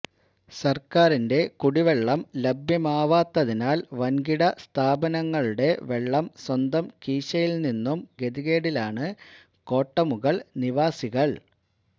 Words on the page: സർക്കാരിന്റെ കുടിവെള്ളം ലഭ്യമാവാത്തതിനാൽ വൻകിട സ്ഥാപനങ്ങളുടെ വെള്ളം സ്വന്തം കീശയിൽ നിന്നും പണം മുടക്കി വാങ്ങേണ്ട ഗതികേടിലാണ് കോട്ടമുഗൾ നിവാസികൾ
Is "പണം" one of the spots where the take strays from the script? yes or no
yes